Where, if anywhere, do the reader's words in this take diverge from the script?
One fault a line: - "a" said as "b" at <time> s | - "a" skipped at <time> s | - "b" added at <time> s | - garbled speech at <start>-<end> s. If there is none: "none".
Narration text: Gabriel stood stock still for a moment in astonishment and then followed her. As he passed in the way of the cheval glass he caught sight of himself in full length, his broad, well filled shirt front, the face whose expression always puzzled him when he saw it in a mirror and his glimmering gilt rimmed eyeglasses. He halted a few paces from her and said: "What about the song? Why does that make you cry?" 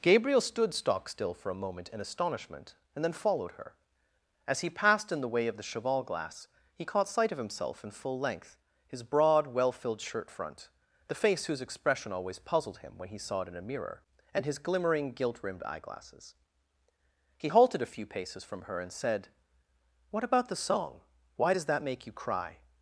none